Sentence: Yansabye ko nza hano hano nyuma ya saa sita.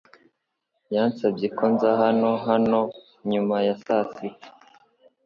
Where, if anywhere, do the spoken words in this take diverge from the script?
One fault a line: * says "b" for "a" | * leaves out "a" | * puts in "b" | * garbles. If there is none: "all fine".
all fine